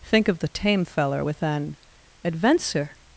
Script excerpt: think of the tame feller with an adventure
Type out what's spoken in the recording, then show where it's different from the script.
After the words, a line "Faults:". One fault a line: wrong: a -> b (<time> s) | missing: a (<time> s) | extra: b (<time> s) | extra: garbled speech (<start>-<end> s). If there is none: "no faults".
think of the tame feller with an adventure
Faults:
no faults